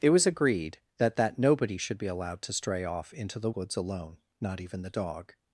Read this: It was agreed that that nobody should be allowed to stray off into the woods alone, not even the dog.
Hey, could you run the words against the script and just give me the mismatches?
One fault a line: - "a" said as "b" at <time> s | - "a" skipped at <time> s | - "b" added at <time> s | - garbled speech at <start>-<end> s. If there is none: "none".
none